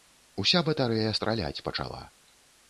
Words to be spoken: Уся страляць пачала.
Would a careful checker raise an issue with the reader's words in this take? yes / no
yes